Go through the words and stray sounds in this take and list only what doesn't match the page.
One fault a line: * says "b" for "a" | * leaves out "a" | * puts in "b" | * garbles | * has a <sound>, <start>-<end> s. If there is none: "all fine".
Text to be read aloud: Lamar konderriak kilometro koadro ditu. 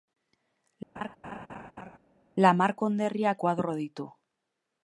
* has a laugh, 1.0-2.0 s
* leaves out "kilometro"